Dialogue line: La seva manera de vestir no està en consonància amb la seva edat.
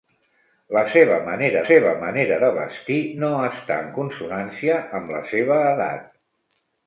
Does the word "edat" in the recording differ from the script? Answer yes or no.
no